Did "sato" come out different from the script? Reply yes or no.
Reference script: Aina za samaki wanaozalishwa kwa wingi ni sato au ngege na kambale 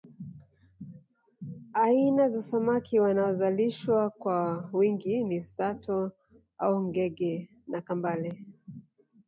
no